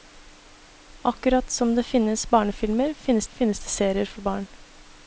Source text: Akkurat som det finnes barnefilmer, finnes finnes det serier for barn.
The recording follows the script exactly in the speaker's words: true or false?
true